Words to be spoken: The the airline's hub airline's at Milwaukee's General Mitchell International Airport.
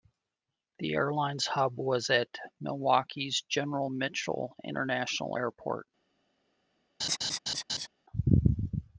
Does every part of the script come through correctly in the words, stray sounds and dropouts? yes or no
no